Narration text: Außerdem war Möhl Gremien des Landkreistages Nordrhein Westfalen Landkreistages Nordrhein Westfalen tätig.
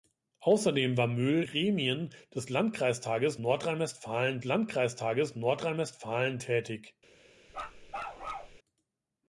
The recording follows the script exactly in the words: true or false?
true